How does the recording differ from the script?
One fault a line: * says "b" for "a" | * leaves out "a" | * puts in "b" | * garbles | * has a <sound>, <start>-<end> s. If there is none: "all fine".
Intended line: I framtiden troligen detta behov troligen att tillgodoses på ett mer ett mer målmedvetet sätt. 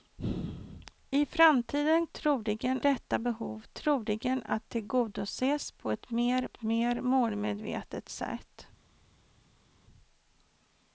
all fine